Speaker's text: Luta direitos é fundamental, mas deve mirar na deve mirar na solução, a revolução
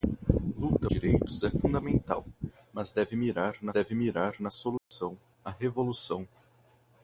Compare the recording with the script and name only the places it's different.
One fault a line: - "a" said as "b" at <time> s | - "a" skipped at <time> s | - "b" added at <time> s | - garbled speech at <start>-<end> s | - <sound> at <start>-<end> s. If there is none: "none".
- dropout at 4.8-4.9 s